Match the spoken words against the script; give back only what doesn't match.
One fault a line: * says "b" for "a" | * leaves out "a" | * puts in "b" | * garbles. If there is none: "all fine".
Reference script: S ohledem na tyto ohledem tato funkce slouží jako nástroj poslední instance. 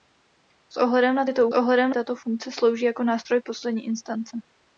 all fine